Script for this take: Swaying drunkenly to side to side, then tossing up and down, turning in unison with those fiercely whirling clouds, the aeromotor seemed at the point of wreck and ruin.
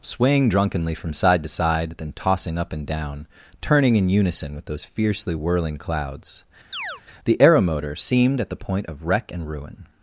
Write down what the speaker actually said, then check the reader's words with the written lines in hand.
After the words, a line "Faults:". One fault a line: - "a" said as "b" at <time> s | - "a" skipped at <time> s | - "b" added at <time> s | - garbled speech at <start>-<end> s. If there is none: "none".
Swaying drunkenly from side to side, then tossing up and down, turning in unison with those fiercely whirling clouds, the aeromotor seemed at the point of wreck and ruin.
Faults:
- "to" said as "from" at 0.9 s